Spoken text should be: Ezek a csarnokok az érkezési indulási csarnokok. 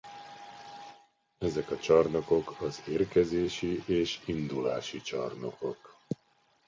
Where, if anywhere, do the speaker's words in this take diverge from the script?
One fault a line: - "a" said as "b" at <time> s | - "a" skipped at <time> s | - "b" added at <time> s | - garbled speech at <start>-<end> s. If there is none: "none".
- "és" added at 3.9 s